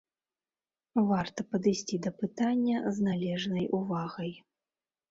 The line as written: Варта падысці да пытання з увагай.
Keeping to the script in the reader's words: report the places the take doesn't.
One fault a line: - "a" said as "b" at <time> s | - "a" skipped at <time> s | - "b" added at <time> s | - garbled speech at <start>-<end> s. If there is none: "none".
- "належнай" added at 3.1 s